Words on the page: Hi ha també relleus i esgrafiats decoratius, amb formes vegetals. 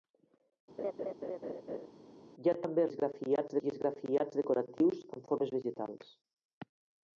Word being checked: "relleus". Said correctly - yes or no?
no